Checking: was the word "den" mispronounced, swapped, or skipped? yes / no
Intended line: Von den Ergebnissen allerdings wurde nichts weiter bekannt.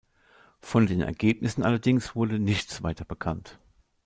no